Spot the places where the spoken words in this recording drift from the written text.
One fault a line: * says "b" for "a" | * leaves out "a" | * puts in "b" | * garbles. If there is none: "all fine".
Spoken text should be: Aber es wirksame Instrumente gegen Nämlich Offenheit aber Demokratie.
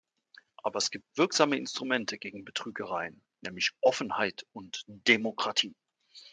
* puts in "gibt"
* puts in "Betrügereien"
* says "und" for "aber"